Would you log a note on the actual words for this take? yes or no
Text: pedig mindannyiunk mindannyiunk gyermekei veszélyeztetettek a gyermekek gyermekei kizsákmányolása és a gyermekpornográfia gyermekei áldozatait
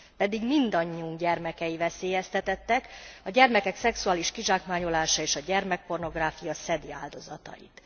yes